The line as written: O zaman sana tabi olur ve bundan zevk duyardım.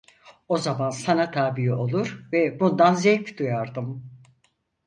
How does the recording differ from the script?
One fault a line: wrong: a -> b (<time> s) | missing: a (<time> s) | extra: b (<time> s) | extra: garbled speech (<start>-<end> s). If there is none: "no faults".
no faults